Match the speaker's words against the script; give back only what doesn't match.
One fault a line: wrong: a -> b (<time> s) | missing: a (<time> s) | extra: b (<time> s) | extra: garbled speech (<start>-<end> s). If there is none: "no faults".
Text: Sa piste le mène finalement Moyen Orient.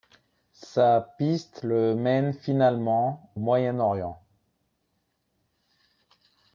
no faults